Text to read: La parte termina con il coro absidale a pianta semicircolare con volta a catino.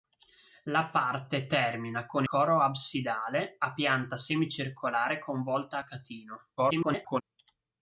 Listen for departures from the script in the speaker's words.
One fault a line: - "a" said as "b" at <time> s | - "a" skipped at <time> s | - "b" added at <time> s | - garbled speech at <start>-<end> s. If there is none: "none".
- "il" skipped at 2.2 s
- garbled speech at 6.6-7.2 s